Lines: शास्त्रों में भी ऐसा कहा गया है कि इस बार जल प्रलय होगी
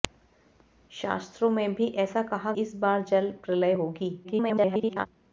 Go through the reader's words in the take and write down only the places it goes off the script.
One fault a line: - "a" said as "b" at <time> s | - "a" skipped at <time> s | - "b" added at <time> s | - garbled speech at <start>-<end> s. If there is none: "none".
- "गया है कि" skipped at 2.5 s
- garbled speech at 4.2-5.1 s